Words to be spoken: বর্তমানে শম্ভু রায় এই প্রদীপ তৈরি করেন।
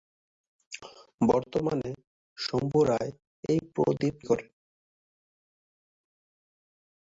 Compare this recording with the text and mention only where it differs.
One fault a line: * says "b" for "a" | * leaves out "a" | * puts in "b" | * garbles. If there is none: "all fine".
* leaves out "তৈরি"